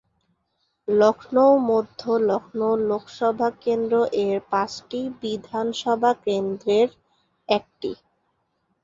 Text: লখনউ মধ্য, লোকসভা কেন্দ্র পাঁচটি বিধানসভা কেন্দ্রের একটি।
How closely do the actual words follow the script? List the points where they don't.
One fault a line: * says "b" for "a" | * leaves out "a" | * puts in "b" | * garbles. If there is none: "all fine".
* puts in "লখনউ"
* puts in "এর"